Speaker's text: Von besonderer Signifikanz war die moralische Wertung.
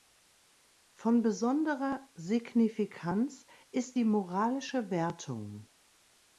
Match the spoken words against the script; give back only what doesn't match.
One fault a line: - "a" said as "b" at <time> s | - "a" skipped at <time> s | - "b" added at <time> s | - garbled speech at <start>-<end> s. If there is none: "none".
- "war" said as "ist" at 3.7 s